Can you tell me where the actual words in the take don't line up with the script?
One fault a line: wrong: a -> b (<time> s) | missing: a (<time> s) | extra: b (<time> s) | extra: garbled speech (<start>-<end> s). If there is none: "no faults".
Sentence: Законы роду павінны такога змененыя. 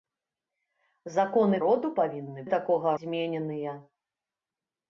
no faults